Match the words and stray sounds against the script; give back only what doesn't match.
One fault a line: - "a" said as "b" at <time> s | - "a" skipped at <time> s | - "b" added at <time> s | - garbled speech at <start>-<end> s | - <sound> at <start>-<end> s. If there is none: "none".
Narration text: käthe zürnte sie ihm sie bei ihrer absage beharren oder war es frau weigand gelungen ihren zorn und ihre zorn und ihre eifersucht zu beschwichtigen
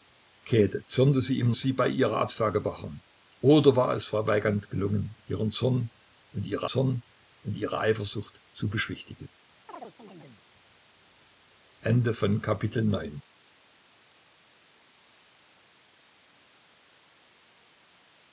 - chirp at 9.7-10.4 s